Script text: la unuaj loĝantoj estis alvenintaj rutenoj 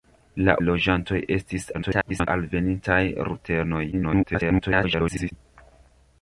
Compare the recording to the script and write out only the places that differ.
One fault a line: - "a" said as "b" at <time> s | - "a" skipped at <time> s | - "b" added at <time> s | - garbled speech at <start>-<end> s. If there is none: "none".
- "unuaj" skipped at 0.5 s
- garbled speech at 1.7-2.3 s
- garbled speech at 3.9-5.3 s